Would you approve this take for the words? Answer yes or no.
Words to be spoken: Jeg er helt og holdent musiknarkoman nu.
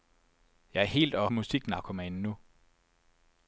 no